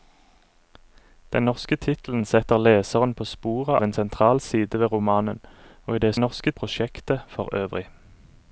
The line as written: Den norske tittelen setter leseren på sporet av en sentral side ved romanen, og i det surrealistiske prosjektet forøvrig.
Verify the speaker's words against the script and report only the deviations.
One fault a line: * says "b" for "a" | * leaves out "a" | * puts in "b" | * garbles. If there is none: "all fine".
* leaves out "av"
* says "norske" for "surrealistiske"